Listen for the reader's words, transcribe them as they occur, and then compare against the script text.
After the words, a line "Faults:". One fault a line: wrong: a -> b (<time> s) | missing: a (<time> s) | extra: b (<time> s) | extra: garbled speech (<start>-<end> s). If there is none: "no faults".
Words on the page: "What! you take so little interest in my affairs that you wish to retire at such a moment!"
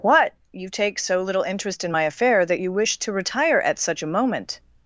"What! you take so little interest in my affair that you wish to retire at such a moment!"
Faults:
wrong: affairs -> affair (2.0 s)